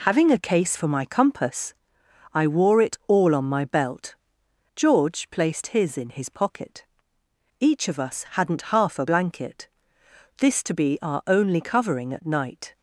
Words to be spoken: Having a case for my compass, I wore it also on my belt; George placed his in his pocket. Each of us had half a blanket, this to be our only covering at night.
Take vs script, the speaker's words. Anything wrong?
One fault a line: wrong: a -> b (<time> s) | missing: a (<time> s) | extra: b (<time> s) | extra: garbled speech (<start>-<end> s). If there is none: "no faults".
wrong: also -> all (3.1 s)
wrong: had -> hadn't (8.3 s)